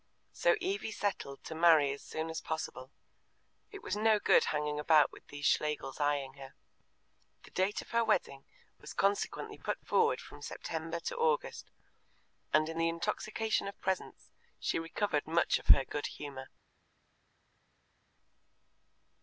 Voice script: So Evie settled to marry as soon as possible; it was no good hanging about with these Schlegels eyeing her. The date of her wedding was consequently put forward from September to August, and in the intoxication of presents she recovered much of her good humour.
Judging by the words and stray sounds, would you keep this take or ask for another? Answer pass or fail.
pass